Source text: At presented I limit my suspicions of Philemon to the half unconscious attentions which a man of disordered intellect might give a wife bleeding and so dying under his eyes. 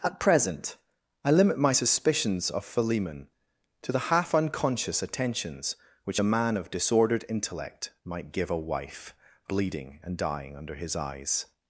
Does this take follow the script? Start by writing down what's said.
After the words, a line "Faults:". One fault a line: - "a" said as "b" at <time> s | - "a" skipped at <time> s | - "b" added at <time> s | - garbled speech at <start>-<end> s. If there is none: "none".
At present I limit my suspicions of Philemon to the half unconscious attentions which a man of disordered intellect might give a wife bleeding and dying under his eyes.
Faults:
- "presented" said as "present" at 0.2 s
- "so" skipped at 10.2 s